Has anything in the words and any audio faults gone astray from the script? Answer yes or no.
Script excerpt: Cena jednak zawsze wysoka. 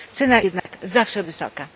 yes